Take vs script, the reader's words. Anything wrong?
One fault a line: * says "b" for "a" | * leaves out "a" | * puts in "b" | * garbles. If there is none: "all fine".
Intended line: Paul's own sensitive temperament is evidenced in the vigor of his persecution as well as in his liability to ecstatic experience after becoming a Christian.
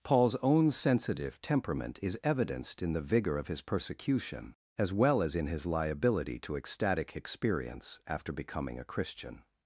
all fine